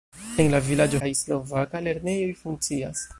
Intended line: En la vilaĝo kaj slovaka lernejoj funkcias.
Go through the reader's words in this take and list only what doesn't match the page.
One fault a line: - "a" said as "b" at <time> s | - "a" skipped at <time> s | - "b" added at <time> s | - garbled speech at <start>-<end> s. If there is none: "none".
none